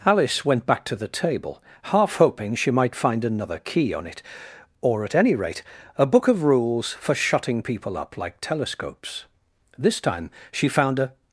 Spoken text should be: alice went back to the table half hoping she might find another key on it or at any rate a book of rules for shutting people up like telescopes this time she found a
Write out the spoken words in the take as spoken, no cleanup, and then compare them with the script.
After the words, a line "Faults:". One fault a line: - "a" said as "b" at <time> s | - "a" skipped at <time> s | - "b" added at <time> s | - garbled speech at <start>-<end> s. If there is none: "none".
alice went back to the table half hoping she might find another key on it or at any rate a book of rules for shutting people up like telescopes this time she found a
Faults:
none